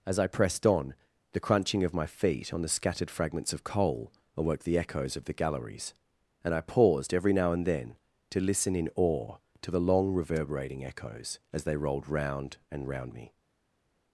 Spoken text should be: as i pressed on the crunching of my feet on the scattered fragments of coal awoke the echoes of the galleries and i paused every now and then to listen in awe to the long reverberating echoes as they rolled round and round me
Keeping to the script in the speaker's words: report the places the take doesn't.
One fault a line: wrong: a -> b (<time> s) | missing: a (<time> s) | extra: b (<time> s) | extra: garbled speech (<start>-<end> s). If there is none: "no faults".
no faults